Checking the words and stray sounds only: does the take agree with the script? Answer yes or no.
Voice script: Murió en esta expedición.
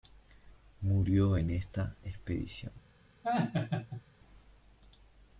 no